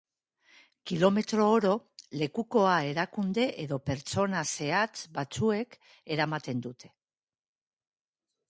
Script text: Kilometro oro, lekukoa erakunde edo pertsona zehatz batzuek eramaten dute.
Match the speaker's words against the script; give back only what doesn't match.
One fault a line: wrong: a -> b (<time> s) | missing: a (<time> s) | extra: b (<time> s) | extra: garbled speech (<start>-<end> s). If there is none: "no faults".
no faults